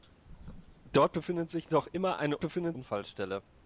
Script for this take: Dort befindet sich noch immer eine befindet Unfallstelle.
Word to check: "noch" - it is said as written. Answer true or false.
true